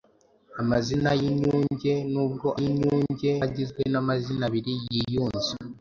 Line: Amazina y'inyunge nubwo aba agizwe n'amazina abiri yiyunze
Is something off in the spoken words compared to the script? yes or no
yes